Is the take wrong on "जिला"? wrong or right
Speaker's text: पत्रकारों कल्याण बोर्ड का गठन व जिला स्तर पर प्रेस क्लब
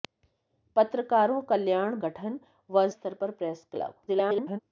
wrong